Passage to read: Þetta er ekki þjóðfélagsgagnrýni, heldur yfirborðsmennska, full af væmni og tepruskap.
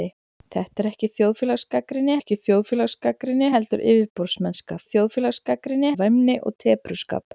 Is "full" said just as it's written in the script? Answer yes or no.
no